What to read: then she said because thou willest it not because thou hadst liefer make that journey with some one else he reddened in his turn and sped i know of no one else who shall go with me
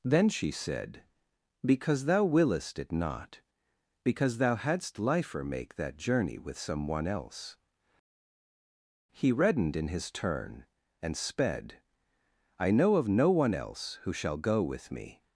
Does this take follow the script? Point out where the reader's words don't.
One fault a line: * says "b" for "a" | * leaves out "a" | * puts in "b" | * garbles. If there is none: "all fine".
all fine